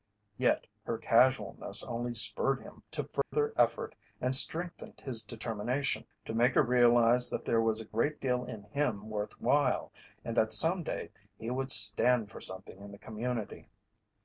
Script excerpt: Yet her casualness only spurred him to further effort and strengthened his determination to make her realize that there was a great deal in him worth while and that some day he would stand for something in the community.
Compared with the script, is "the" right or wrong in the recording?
right